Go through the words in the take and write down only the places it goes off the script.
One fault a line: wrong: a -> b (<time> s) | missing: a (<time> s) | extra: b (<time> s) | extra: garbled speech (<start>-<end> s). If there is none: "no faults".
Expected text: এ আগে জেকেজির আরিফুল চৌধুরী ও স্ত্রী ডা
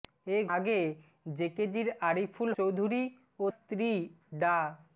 no faults